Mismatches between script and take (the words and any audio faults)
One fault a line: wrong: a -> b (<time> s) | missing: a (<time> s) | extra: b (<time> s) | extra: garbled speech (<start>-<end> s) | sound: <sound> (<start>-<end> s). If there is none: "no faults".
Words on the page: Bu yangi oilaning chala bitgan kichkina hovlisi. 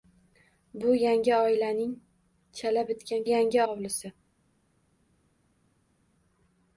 wrong: kichkina -> yangi (3.3 s)